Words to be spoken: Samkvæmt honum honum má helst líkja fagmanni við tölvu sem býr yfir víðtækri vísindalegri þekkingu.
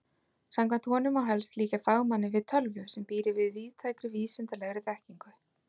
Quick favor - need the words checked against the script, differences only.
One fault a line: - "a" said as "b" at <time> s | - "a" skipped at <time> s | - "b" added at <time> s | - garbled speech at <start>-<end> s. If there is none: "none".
- "honum" skipped at 1.1 s